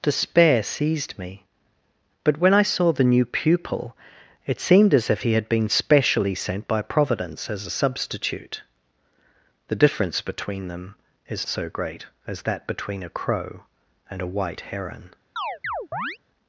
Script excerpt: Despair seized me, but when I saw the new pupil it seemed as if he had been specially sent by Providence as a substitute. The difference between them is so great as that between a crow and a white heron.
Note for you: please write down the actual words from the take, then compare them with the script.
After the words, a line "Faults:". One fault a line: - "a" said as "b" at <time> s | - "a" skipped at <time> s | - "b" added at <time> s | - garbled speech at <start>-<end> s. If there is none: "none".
Despair seized me, but when I saw the new pupil it seemed as if he had been specially sent by Providence as a substitute. The difference between them is so great as that between a crow and a white heron.
Faults:
none